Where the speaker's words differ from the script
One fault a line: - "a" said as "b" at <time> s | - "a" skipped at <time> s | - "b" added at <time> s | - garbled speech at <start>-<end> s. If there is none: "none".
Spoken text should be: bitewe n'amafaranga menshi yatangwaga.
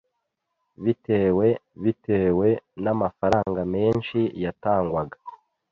- "bitewe" added at 1.8 s